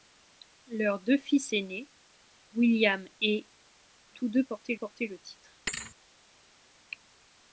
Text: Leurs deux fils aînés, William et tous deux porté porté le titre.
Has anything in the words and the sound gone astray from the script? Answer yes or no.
yes